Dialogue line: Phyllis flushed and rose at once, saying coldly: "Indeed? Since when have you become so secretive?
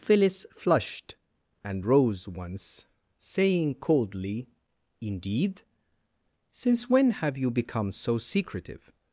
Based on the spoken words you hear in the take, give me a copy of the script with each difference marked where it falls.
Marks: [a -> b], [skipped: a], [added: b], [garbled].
Phyllis flushed and rose [skipped: at] once, saying coldly: "Indeed? Since when have you become so secretive?